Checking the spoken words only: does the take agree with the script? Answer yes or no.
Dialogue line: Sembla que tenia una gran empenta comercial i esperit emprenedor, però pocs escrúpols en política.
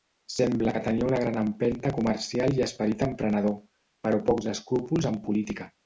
yes